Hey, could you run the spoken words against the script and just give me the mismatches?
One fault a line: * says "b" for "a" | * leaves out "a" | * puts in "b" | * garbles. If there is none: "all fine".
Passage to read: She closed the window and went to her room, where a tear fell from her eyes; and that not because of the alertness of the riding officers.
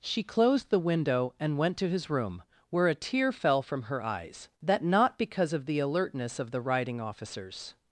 * says "his" for "her"
* leaves out "and"